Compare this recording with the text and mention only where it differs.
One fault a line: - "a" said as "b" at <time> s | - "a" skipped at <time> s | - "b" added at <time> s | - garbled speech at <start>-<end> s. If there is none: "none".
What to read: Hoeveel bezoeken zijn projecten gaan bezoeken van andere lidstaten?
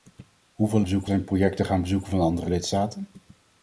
none